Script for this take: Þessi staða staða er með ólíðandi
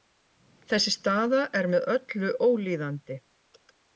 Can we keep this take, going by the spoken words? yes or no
no